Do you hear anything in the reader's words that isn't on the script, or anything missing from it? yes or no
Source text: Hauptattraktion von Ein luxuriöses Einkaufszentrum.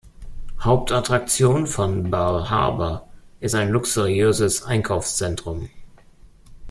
yes